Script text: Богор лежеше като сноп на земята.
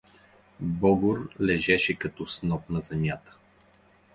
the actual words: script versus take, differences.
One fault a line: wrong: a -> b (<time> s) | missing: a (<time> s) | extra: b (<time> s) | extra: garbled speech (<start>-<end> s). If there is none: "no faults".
no faults